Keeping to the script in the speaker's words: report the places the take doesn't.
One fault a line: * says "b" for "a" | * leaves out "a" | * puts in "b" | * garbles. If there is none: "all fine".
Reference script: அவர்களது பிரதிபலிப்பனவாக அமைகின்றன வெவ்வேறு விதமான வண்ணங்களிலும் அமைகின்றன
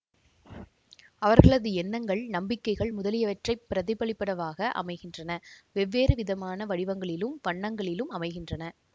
* puts in "எண்ணங்கள் நம்பிக்கைகள் முதலியவற்றைப்"
* puts in "வடிவங்களிலும்"